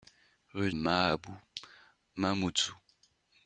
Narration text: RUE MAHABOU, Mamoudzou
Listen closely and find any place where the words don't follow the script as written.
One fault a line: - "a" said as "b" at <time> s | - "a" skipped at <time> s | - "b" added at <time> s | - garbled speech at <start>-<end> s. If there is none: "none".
none